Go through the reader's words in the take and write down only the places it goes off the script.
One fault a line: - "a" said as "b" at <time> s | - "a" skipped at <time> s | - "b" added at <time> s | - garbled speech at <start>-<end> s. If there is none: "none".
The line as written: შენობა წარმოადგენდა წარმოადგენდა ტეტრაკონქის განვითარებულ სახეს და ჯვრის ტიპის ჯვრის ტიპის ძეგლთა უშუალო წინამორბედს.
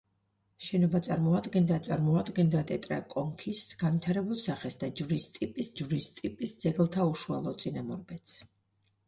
none